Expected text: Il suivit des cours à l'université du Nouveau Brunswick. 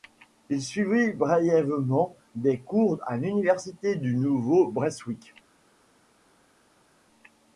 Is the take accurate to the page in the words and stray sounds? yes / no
no